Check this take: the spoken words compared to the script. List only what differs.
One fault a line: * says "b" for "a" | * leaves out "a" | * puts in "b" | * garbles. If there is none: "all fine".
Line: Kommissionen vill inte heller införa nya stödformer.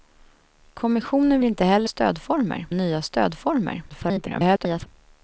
* leaves out "vill"
* says "stödformer" for "införa"
* garbles